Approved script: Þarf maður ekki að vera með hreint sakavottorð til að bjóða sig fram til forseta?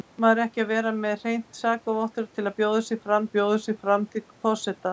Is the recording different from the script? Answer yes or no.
yes